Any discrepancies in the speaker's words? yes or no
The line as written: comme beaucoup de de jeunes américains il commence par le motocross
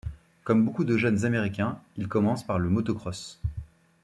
yes